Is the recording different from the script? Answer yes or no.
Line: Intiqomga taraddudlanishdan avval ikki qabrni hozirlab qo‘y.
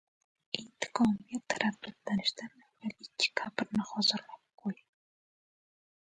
no